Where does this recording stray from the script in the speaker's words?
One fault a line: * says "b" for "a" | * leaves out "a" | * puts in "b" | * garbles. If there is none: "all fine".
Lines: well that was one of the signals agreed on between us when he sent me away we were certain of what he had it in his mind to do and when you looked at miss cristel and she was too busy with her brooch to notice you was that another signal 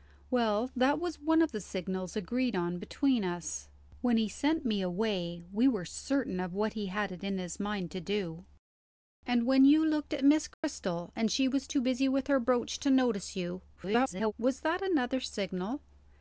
* garbles